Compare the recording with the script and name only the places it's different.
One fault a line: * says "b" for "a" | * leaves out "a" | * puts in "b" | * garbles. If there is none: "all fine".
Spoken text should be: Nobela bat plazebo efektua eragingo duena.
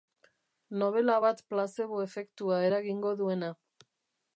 all fine